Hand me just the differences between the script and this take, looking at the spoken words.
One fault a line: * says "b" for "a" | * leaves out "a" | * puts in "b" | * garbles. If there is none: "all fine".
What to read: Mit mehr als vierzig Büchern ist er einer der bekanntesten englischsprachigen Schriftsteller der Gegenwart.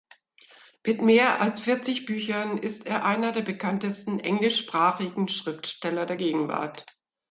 all fine